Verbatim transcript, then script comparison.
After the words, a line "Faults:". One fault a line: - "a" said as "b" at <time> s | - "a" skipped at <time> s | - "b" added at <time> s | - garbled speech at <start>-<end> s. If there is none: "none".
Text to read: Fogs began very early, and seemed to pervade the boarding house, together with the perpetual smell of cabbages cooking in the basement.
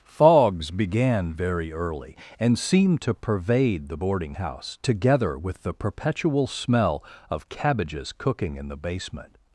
Fogs began very early, and seemed to pervade the boarding house, together with the perpetual smell of cabbages cooking in the basement.
Faults:
none